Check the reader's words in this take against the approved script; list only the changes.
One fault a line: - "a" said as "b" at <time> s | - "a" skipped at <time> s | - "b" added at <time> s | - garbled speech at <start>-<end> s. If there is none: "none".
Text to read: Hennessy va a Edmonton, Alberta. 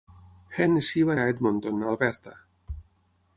none